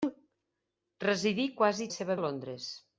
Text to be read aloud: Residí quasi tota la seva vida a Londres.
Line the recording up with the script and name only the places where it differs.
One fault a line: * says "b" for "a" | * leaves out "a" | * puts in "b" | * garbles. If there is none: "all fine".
* leaves out "tota"
* leaves out "vida"